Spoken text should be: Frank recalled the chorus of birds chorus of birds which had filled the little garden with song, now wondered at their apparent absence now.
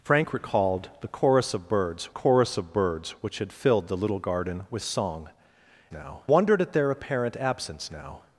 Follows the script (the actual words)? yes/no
yes